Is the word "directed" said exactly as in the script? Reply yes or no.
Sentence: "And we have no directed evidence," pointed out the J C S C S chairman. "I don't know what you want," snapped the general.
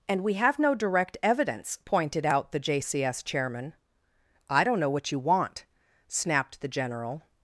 no